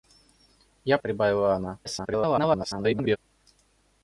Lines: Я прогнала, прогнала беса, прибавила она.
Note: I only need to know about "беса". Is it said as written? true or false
false